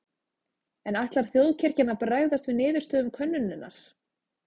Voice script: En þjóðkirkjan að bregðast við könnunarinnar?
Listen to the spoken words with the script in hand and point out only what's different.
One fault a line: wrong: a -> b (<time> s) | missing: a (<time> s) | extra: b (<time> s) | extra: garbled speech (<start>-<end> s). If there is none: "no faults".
extra: ætlar (1.0 s)
extra: niðurstöðum (2.6 s)